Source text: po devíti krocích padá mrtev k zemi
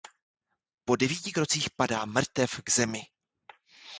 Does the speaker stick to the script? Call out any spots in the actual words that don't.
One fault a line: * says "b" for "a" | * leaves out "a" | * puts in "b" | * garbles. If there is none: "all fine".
all fine